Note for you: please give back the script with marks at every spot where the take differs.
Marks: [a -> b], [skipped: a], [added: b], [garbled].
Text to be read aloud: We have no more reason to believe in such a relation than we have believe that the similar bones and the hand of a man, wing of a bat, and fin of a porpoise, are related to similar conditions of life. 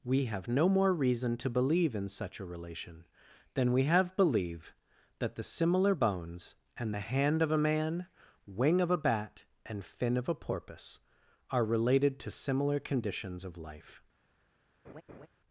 We have no more reason to believe in such a relation than we have believe that the similar bones and the hand of a man, wing of a bat, and fin of a porpoise, are related to similar conditions of life.